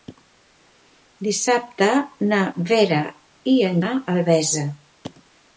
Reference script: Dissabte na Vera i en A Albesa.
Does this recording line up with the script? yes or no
yes